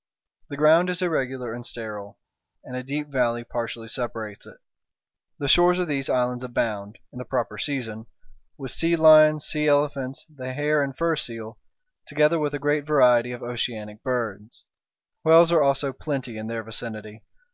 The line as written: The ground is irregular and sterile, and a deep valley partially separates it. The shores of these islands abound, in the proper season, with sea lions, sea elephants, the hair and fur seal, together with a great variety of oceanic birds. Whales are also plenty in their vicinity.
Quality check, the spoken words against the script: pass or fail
pass